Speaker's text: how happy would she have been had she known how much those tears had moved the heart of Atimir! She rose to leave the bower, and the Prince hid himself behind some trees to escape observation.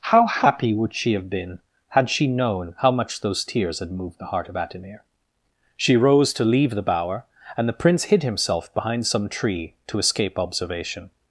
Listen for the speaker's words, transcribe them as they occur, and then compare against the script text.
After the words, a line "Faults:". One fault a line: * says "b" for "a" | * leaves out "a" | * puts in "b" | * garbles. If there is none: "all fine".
how happy would she have been had she known how much those tears had moved the heart of Atimir! She rose to leave the bower, and the Prince hid himself behind some tree to escape observation.
Faults:
* says "tree" for "trees"